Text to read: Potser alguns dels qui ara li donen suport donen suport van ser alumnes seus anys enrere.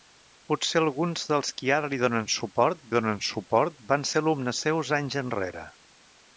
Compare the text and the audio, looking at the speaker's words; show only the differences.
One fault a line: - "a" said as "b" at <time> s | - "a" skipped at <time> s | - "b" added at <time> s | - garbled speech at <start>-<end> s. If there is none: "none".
none